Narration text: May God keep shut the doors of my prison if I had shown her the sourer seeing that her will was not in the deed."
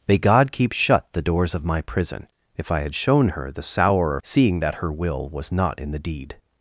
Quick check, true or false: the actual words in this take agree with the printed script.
true